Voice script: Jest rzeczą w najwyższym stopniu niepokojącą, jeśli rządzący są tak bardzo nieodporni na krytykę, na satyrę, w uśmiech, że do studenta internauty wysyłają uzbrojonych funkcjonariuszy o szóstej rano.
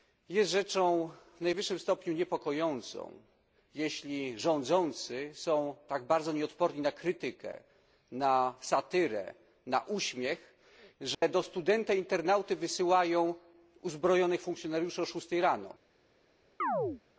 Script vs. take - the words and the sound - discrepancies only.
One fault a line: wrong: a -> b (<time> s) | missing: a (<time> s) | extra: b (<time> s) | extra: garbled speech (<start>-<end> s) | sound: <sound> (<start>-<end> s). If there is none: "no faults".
wrong: w -> na (9.7 s)
sound: dropout (11.1-11.2 s)
sound: chirp (16.6-17.0 s)